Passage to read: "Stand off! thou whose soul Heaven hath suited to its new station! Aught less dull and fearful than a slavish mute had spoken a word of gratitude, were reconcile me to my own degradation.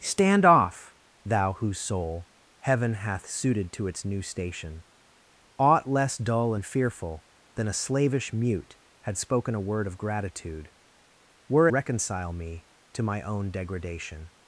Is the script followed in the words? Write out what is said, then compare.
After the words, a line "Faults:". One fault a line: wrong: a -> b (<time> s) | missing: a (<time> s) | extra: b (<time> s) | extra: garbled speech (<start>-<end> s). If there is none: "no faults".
"Stand off! thou whose soul Heaven hath suited to its new station! Aught less dull and fearful than a slavish mute had spoken a word of gratitude, were reconcile me to my own degradation.
Faults:
no faults